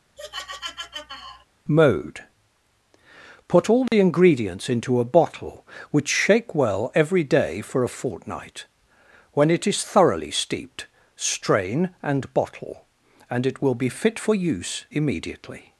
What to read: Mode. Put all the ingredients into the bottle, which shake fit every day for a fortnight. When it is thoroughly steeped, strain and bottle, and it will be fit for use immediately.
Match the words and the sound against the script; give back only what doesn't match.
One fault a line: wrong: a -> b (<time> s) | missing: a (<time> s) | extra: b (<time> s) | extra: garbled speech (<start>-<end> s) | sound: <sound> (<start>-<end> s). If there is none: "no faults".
sound: laugh (0.2-1.5 s)
sound: dropout (3.9-3.9 s)
wrong: the -> a (5.0 s)
wrong: fit -> well (6.5 s)